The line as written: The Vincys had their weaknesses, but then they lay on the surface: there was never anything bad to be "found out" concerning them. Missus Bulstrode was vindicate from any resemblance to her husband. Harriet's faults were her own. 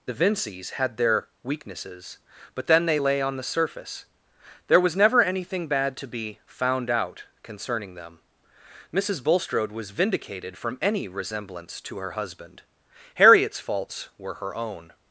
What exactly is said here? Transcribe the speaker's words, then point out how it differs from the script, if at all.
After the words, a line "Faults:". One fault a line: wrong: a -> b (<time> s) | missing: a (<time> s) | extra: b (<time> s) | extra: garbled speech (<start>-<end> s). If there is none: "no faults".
The Vincys had their weaknesses, but then they lay on the surface: there was never anything bad to be "found out" concerning them. Missus Bulstrode was vindicated from any resemblance to her husband. Harriet's faults were her own.
Faults:
wrong: vindicate -> vindicated (9.9 s)